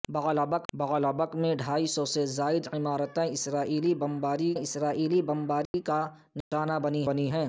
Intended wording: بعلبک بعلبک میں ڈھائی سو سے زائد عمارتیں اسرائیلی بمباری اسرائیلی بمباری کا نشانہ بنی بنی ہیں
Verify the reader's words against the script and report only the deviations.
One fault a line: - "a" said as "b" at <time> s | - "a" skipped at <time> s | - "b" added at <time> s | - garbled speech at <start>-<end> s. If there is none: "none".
none